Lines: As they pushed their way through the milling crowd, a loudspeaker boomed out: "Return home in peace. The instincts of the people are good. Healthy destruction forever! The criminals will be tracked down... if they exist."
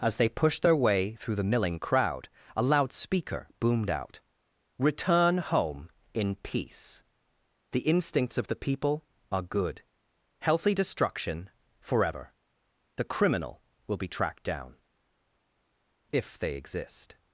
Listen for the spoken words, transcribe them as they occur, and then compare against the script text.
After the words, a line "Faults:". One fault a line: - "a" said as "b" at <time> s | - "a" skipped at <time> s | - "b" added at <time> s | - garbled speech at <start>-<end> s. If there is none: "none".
As they pushed their way through the milling crowd, a loudspeaker boomed out: "Return home in peace. The instincts of the people are good. Healthy destruction forever! The criminal will be tracked down... if they exist."
Faults:
- "criminals" said as "criminal" at 13.0 s